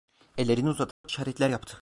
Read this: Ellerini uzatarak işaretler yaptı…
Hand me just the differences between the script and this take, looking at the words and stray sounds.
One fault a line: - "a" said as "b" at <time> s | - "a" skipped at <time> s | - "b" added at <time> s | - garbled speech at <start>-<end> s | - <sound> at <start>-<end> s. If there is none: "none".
- dropout at 0.9-1.0 s